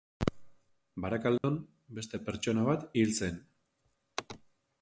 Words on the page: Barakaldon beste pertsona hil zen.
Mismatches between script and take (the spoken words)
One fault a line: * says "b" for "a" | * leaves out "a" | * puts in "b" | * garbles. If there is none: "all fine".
* puts in "bat"